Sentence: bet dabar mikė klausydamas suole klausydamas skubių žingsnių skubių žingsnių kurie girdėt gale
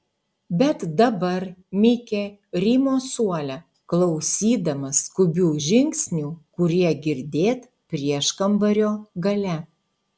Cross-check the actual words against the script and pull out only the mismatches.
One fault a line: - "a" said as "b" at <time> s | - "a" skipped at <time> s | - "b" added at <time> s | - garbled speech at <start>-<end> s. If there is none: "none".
- "klausydamas" said as "rymo" at 2.6 s
- "skubių žingsnių" skipped at 6.3 s
- "prieškambario" added at 7.9 s